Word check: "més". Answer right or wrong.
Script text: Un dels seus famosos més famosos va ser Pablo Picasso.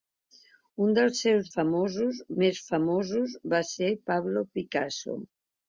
right